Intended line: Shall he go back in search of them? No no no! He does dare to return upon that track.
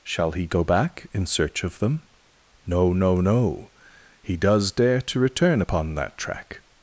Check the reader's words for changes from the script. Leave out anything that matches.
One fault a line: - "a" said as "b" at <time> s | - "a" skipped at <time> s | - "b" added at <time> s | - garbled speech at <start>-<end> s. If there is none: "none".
none